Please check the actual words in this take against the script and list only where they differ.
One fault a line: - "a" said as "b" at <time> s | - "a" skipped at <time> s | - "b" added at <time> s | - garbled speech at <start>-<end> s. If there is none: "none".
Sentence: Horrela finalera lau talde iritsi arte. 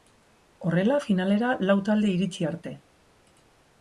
none